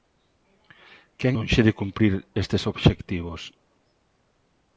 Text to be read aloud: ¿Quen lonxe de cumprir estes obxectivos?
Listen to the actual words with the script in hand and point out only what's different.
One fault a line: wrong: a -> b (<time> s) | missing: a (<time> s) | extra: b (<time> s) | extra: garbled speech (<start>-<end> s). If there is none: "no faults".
no faults